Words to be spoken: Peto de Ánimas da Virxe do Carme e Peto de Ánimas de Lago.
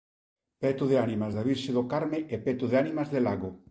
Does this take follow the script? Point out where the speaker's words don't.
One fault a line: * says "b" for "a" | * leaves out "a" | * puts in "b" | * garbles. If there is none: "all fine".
all fine